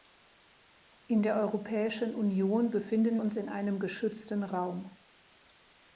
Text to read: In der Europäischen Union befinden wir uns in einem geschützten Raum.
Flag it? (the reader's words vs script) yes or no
yes